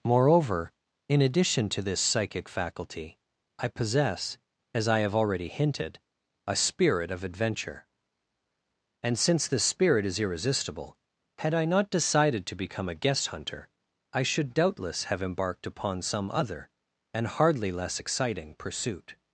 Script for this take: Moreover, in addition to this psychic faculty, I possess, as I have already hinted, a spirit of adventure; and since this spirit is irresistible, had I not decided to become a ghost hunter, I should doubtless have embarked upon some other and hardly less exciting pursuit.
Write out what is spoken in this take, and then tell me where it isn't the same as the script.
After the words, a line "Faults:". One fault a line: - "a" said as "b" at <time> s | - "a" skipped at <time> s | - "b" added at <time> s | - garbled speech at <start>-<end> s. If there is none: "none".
Moreover, in addition to this psychic faculty, I possess, as I have already hinted, a spirit of adventure; and since this spirit is irresistible, had I not decided to become a guest hunter, I should doubtless have embarked upon some other and hardly less exciting pursuit.
Faults:
- "ghost" said as "guest" at 12.9 s